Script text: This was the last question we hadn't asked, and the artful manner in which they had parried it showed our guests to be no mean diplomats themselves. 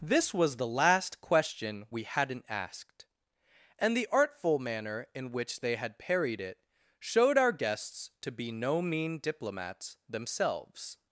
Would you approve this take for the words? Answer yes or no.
yes